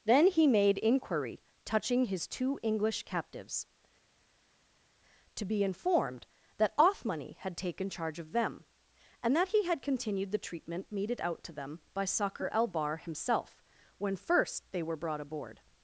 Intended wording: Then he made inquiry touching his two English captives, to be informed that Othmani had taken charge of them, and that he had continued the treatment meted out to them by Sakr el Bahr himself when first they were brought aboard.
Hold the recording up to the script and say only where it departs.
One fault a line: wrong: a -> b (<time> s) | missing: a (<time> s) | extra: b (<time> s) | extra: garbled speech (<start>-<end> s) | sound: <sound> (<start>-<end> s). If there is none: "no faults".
no faults